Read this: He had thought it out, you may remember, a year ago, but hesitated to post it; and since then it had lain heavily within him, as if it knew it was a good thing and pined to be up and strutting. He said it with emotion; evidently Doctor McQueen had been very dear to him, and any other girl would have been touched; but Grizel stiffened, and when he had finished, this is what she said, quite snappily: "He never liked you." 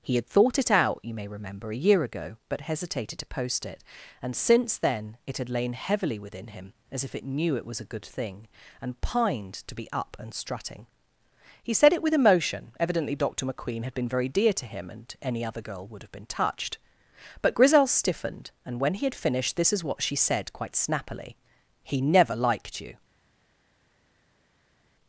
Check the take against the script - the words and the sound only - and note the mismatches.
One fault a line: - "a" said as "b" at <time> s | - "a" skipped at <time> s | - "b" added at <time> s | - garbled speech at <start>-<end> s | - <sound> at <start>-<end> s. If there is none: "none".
none